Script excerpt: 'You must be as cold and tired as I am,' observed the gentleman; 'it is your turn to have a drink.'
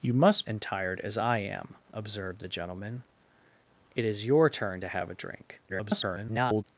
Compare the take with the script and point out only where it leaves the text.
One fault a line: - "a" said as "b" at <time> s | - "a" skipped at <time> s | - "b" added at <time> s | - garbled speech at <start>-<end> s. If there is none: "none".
- "be as cold" skipped at 0.5 s
- garbled speech at 5.7-6.6 s